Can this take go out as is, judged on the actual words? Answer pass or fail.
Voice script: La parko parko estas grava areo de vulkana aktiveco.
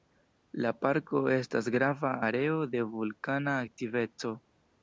fail